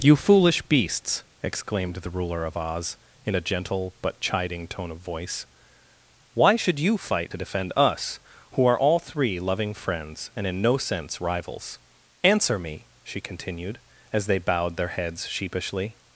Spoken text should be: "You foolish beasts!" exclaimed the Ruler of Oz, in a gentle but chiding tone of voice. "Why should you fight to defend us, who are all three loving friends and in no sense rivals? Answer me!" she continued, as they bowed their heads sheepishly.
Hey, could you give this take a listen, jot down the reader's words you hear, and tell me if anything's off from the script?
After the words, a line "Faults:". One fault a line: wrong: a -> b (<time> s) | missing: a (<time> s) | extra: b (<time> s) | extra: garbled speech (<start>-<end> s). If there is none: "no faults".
"You foolish beasts!" exclaimed the Ruler of Oz, in a gentle but chiding tone of voice. "Why should you fight to defend us, who are all three loving friends and in no sense rivals? Answer me!" she continued, as they bowed their heads sheepishly.
Faults:
no faults